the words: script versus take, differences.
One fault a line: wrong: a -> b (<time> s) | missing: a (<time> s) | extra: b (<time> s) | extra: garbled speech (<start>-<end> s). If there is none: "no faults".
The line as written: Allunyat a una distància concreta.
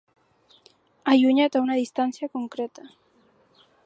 no faults